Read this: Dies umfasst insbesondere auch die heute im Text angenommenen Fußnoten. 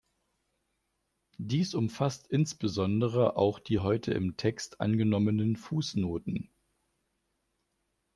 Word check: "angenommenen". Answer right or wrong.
right